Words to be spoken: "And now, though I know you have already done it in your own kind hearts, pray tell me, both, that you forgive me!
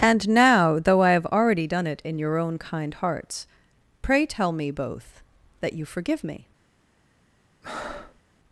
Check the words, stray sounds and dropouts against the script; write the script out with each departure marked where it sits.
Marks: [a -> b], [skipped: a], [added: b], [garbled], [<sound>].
"And now, though I [skipped: know you] have already done it in your own kind hearts, pray tell me, both, that you forgive me! [breath]